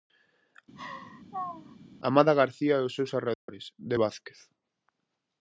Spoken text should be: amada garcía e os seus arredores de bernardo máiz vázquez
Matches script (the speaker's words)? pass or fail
fail